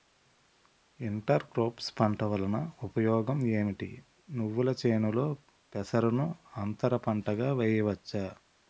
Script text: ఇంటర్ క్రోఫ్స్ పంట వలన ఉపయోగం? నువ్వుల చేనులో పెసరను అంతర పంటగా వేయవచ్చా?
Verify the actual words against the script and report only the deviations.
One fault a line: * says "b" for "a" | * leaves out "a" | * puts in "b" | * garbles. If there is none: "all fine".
* puts in "ఏమిటి"